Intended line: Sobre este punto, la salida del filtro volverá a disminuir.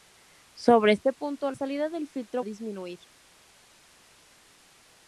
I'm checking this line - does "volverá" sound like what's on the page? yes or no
no